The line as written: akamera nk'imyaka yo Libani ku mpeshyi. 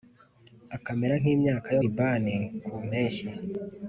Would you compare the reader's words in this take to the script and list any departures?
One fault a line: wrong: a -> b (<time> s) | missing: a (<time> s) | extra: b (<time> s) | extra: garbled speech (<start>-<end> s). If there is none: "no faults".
no faults